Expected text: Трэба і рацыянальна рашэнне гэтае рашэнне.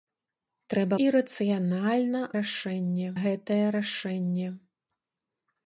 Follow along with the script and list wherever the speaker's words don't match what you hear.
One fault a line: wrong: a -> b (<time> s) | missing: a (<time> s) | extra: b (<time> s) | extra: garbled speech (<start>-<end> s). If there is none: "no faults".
no faults